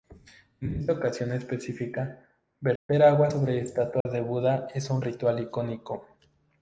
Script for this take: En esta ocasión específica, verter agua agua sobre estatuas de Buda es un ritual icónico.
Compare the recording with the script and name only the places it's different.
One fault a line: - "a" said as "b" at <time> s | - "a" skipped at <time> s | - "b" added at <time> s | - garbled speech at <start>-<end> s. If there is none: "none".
- "agua" skipped at 3.3 s